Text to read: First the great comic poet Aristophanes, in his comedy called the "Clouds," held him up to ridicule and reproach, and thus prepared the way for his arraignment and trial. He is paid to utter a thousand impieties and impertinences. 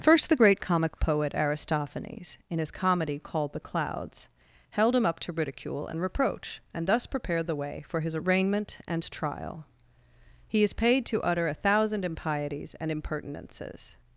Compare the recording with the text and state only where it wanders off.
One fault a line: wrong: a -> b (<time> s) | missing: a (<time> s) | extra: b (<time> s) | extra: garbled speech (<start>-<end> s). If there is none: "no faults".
no faults